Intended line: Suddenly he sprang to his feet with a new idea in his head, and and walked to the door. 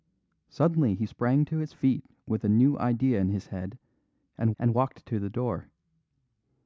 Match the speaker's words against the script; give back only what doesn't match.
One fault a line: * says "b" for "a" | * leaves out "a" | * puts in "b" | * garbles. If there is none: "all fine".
all fine